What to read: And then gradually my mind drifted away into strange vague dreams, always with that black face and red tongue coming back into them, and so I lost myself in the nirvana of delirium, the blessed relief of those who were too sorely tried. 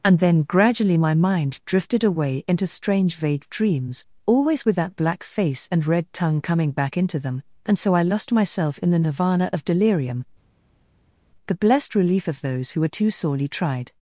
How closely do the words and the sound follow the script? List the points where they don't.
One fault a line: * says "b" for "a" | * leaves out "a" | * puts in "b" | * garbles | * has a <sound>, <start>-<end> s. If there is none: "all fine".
all fine